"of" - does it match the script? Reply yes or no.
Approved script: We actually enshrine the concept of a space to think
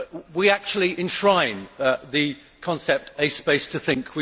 no